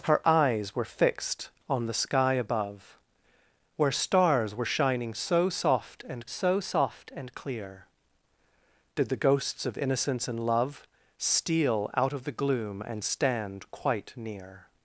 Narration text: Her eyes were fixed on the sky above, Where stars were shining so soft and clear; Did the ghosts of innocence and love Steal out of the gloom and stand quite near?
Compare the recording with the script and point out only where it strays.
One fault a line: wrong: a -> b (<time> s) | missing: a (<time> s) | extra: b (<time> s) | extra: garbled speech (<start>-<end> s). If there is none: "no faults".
extra: so soft and (6.3 s)